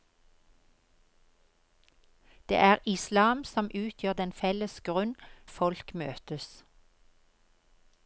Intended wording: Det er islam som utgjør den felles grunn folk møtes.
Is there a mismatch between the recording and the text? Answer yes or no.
no